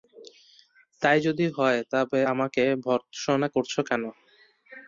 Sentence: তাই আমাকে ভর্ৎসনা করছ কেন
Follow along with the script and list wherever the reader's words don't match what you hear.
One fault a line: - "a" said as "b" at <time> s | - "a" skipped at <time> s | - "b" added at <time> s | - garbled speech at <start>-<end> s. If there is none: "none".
- "যদি হয় তবে" added at 1.3 s